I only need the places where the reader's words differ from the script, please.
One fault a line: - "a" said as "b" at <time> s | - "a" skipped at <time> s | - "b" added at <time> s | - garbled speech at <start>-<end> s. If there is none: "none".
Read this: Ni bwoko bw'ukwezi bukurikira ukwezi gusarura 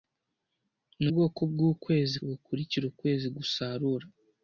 none